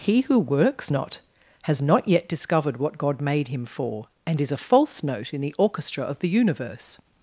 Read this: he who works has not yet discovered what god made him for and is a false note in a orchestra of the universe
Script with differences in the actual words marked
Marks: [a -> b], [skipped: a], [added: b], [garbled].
he who works [added: not] has not yet discovered what god made him for and is a false note in [a -> the] orchestra of the universe